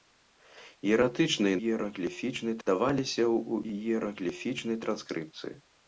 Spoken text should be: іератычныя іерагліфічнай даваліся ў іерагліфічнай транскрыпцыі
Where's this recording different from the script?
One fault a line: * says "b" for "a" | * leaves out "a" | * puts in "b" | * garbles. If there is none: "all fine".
all fine